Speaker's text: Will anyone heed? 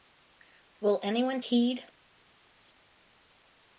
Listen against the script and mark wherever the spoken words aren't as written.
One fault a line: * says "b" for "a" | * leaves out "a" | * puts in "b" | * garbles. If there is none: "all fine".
all fine